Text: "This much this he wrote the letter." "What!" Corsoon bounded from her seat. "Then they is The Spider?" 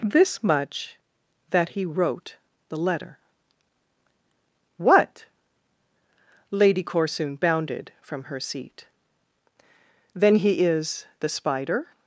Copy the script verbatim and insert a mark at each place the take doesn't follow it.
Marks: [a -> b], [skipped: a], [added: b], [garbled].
"This much [this -> that] he wrote the letter." "What!" [added: Lady] Corsoon bounded from her seat. "Then [they -> he] is The Spider?"